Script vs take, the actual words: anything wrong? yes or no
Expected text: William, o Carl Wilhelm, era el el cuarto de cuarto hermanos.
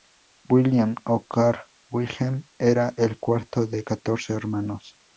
yes